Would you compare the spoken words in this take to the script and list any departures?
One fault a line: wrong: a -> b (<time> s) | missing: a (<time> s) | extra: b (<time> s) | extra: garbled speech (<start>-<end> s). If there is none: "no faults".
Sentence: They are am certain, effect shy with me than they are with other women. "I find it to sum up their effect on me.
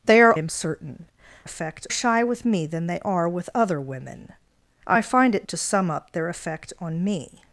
no faults